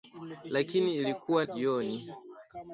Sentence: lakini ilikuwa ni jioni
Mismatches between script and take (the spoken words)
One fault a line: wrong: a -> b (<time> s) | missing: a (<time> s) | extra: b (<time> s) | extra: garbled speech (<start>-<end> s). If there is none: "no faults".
missing: ni (1.4 s)